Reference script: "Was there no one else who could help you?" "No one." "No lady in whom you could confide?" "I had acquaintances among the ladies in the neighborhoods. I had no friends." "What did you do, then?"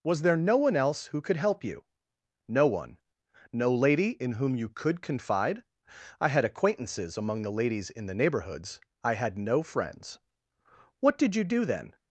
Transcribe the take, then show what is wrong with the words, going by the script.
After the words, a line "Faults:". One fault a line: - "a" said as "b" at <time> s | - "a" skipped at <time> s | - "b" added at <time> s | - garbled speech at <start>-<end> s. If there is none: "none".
"Was there no one else who could help you?" "No one." "No lady in whom you could confide?" "I had acquaintances among the ladies in the neighborhoods. I had no friends." "What did you do, then?"
Faults:
none